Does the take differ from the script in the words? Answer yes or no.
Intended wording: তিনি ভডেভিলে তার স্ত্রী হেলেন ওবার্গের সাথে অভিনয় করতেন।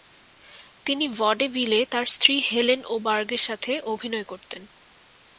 no